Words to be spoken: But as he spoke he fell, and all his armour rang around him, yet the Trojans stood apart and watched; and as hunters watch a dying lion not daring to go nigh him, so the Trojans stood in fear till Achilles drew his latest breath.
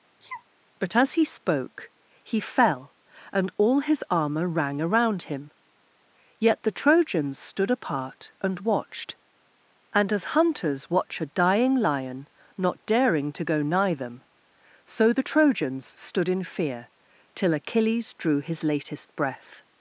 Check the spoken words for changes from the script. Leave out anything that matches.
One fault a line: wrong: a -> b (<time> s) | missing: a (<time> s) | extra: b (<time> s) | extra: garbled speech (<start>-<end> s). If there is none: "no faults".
wrong: him -> them (13.9 s)